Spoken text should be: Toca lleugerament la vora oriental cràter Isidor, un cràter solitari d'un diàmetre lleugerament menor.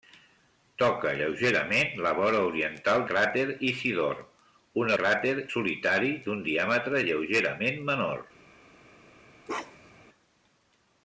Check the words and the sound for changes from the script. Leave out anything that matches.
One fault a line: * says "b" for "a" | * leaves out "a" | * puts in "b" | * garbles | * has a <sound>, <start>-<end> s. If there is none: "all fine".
* has a bark, 9.5-10.1 s